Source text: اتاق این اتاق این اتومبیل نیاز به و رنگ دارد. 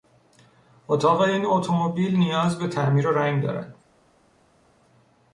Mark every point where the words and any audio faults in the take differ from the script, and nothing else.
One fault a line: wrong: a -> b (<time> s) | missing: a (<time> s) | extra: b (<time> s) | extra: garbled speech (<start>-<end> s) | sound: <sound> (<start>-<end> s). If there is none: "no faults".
missing: اتاق این (1.4 s)
extra: تعمیر (2.7 s)